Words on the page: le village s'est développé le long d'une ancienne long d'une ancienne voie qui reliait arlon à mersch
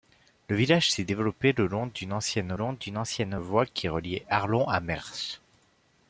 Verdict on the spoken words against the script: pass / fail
pass